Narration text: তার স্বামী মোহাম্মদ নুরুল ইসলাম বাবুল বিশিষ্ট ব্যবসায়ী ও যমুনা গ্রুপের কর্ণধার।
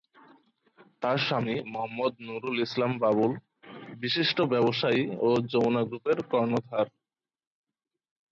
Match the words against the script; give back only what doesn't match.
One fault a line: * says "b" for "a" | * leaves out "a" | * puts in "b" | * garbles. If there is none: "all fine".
all fine